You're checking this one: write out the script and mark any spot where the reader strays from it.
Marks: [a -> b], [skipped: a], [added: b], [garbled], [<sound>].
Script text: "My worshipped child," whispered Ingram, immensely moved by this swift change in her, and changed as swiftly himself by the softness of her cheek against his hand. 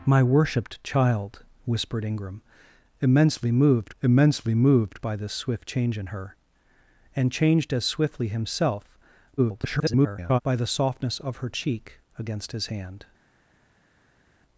"My worshipped child," whispered Ingram, immensely moved [added: immensely moved] by this swift change in her, and changed as swiftly himself [garbled] by the softness of her cheek against his hand.